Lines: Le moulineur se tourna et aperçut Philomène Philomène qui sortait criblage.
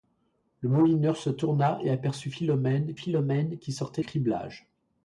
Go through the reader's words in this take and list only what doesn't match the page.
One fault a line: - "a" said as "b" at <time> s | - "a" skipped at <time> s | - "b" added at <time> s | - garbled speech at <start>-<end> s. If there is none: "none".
none